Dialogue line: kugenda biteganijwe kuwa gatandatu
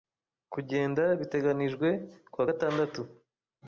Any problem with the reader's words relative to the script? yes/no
no